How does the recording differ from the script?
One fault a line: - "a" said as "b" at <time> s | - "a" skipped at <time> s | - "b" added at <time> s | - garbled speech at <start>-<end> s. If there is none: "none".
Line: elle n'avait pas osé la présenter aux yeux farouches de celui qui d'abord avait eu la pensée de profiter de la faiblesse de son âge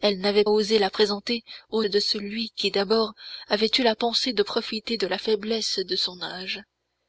- "pas" skipped at 0.5 s
- "yeux farouches" skipped at 1.8 s